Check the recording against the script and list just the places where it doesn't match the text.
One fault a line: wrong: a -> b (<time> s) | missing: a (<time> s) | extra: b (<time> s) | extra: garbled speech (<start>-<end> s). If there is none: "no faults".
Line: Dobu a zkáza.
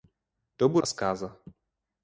no faults